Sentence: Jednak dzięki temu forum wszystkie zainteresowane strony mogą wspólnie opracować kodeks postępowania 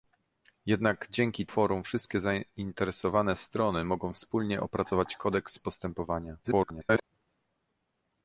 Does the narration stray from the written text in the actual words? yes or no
yes